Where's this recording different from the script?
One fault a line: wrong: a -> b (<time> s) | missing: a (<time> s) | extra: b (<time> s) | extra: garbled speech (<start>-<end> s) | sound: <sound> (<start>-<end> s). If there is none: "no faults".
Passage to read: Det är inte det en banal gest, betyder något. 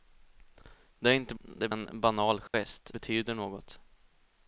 sound: dropout (2.5-2.5 s)